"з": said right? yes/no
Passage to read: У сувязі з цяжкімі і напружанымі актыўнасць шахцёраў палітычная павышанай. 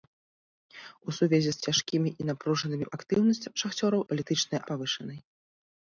yes